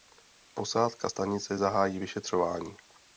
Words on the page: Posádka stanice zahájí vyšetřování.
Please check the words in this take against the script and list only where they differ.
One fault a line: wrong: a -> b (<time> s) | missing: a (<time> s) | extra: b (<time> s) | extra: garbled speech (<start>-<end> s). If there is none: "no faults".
no faults